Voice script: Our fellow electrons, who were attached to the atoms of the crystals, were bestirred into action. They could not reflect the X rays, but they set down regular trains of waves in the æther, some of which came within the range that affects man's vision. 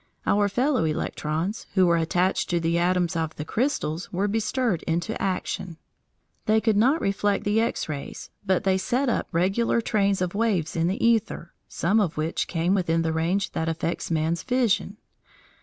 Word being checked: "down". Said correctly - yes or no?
no